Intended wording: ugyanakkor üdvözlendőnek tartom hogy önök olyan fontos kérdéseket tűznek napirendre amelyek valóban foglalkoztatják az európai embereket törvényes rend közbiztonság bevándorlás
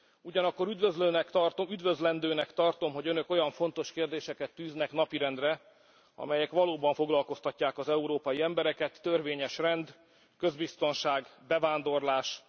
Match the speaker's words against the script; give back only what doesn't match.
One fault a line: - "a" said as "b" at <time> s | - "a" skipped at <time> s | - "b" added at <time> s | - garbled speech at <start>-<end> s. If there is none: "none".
none